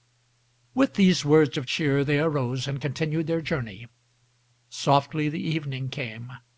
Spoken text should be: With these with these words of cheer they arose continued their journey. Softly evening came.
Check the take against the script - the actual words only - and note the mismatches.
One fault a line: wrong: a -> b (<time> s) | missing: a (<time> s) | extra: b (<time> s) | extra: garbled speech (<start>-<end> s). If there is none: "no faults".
missing: with these (1.2 s)
extra: and (2.7 s)
extra: the (5.3 s)